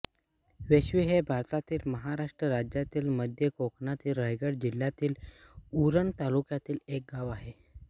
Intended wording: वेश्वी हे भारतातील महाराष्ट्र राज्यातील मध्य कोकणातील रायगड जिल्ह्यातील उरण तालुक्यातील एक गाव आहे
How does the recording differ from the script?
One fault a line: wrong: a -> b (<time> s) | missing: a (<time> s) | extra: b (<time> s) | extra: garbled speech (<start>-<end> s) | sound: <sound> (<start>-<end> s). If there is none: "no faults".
no faults